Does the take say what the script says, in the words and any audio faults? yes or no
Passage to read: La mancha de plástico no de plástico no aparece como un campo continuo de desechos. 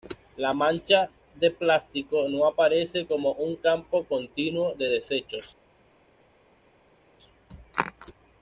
no